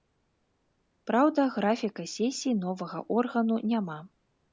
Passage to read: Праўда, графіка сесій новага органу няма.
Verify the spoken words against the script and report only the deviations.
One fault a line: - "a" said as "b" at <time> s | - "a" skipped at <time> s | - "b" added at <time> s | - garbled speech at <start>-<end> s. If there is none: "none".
none